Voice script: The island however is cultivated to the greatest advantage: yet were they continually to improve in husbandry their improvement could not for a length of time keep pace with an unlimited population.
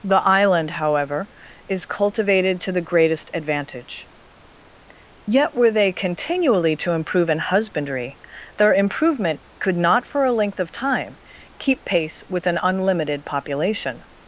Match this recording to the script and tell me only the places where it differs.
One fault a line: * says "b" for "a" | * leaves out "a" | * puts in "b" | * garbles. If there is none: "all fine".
all fine